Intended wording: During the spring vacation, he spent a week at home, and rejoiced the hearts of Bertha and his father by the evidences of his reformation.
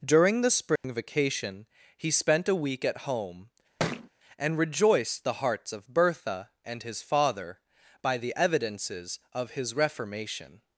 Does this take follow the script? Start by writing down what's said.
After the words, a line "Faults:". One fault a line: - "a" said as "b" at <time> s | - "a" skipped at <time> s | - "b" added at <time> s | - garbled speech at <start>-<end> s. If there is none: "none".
During the spring vacation, he spent a week at home, and rejoiced the hearts of Bertha and his father by the evidences of his reformation.
Faults:
none